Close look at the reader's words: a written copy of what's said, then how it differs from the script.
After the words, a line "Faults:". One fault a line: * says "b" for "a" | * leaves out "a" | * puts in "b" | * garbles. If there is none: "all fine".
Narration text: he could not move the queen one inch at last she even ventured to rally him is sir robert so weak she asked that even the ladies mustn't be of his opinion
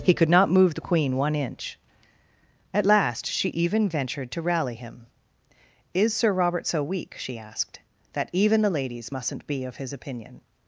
he could not move the queen one inch at last she even ventured to rally him is sir robert so weak she asked that even the ladies mustn't be of his opinion
Faults:
all fine